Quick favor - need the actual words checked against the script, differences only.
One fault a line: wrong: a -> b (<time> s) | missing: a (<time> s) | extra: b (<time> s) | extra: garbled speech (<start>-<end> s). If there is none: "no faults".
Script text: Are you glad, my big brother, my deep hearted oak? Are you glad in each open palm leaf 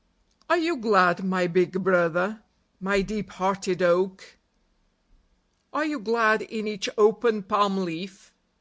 no faults